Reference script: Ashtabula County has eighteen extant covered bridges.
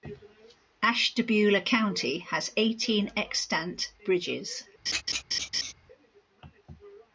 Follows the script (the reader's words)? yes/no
no